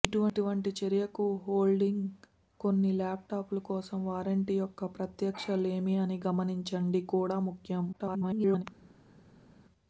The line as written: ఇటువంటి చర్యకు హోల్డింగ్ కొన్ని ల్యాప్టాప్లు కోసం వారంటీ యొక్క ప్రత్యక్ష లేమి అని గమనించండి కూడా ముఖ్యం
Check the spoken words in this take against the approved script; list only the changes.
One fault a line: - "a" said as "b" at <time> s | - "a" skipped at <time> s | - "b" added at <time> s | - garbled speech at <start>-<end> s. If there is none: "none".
- garbled speech at 7.9-8.6 s